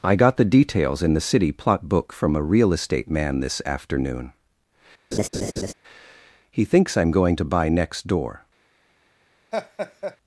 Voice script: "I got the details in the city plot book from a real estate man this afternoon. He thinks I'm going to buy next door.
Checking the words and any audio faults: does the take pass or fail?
fail